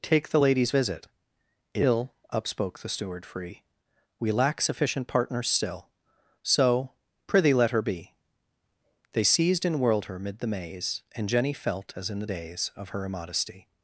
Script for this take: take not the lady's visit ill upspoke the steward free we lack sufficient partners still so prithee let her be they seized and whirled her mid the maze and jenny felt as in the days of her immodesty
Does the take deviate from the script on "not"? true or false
true